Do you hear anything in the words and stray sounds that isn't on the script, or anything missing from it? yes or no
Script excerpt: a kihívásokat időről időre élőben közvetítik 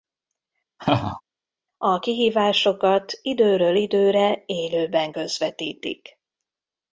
yes